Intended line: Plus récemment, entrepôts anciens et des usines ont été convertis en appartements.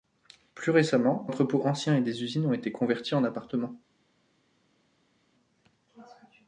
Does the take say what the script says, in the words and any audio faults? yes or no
yes